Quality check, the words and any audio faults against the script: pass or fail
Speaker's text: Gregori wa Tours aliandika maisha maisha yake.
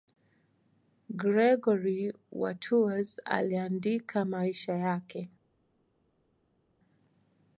fail